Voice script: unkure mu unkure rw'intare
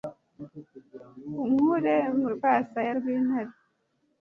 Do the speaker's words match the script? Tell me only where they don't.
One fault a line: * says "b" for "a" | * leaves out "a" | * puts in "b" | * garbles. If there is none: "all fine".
* says "rwasaya" for "unkure"